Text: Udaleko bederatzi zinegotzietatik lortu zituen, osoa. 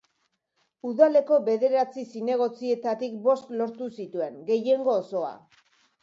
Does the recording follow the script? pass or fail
fail